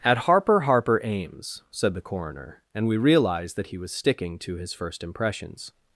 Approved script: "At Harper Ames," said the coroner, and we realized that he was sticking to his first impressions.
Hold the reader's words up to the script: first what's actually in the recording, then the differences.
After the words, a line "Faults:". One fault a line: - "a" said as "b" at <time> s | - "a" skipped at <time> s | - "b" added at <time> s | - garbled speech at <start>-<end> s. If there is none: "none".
"At Harper Harper Ames," said the coroner, and we realized that he was sticking to his first impressions.
Faults:
- "Harper" added at 0.6 s